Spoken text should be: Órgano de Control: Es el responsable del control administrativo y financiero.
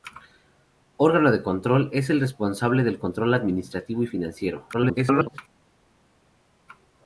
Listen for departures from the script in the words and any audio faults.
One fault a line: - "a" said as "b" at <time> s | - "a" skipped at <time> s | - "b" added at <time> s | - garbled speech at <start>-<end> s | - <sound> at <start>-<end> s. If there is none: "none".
- garbled speech at 4.7-5.4 s